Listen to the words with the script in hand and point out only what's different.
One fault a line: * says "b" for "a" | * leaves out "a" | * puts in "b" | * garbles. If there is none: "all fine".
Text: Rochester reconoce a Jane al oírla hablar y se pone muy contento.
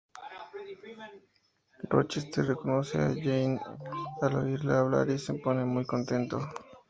all fine